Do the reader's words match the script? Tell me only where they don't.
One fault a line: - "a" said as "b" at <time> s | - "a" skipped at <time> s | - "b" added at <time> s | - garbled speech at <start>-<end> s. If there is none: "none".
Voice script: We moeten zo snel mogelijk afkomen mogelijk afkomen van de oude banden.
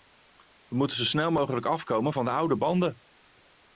- "mogelijk afkomen" skipped at 2.1 s